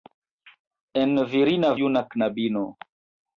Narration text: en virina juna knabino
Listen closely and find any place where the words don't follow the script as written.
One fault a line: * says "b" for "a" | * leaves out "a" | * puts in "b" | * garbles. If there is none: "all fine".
all fine